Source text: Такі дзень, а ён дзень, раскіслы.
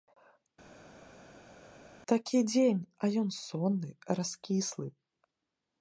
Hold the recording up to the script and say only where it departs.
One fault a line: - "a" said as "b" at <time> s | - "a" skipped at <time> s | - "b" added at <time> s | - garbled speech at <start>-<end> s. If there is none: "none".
- "дзень" said as "сонны" at 3.4 s